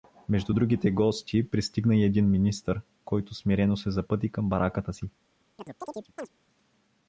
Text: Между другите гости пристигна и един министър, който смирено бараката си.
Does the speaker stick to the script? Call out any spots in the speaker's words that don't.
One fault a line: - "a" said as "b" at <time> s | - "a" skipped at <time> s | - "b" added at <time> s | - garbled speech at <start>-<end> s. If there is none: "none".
- "се запъти към" added at 3.8 s